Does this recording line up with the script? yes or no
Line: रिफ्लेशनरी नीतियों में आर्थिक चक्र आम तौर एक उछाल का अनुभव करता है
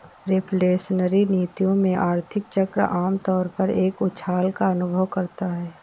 no